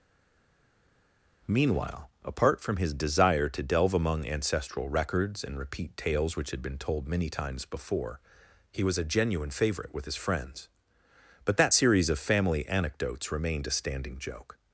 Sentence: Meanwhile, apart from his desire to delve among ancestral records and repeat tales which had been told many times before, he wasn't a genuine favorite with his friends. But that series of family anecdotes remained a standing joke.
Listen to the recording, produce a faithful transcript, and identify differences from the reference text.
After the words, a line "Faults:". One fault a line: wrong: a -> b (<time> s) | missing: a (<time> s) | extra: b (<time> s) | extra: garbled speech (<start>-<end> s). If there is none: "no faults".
Meanwhile, apart from his desire to delve among ancestral records and repeat tales which had been told many times before, he was a genuine favorite with his friends. But that series of family anecdotes remained a standing joke.
Faults:
wrong: wasn't -> was (8.8 s)